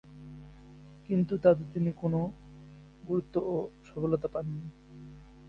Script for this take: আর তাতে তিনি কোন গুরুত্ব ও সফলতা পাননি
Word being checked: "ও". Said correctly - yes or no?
yes